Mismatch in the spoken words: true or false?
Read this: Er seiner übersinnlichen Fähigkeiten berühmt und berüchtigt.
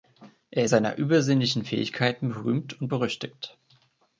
false